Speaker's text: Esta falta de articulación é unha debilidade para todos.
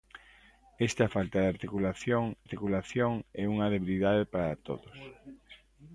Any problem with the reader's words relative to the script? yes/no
yes